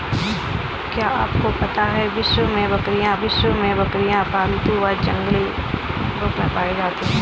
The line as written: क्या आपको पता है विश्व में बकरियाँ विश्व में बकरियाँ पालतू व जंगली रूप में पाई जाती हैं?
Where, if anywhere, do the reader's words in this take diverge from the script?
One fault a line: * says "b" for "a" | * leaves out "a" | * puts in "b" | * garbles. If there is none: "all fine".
all fine